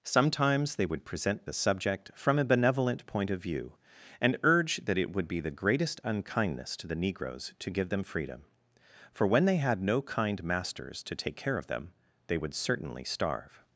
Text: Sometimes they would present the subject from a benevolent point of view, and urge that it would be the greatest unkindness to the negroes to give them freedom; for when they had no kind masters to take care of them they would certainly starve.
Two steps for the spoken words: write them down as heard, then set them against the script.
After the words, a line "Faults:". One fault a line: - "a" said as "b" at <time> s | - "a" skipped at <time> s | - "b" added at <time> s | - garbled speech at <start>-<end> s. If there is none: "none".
Sometimes they would present the subject from a benevolent point of view, and urge that it would be the greatest unkindness to the negroes to give them freedom; for when they had no kind masters to take care of them they would certainly starve.
Faults:
none